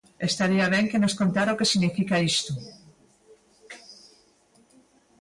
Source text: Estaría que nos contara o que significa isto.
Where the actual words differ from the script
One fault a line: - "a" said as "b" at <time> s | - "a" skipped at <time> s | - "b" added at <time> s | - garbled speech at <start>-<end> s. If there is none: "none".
- "ben" added at 0.7 s